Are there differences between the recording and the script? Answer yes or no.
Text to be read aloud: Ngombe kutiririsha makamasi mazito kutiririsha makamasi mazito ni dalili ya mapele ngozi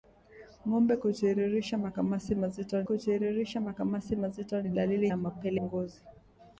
no